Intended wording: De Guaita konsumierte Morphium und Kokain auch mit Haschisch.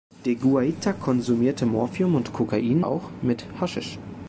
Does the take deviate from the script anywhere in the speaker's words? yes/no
no